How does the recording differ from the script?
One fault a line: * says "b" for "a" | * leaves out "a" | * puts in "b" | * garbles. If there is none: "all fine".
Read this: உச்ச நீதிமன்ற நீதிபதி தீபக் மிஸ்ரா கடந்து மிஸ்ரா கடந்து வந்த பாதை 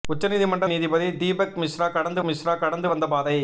all fine